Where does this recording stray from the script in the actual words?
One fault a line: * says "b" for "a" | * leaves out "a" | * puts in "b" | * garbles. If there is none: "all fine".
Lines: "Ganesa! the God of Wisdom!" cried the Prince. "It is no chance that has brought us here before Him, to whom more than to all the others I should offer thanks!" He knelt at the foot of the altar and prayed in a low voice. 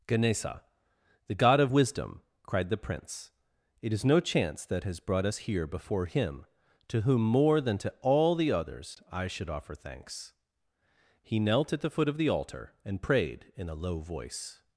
all fine